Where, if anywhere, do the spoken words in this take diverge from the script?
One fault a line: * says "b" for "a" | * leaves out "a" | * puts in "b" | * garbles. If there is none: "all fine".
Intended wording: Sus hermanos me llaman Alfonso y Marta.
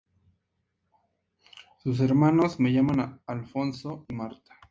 * says "se" for "me"